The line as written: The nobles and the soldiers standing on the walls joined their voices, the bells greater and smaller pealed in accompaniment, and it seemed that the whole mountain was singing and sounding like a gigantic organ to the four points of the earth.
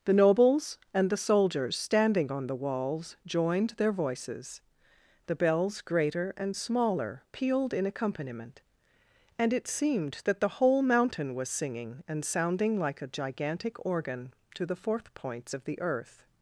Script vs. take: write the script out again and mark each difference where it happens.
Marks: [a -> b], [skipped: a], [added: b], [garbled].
The nobles and the soldiers standing on the walls joined their voices, the bells greater and smaller pealed in accompaniment, and it seemed that the whole mountain was singing and sounding like a gigantic organ to the [four -> fourth] points of the earth.